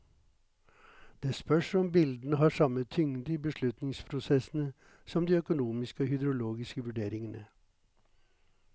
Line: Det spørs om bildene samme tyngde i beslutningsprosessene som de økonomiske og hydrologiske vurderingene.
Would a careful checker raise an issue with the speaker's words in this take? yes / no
yes